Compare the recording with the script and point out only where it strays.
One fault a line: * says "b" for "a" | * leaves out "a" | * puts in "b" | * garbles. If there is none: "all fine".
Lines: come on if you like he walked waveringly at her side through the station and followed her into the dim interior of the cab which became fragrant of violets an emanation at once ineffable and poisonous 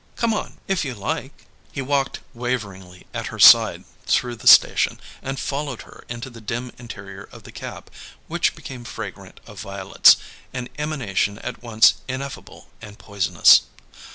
all fine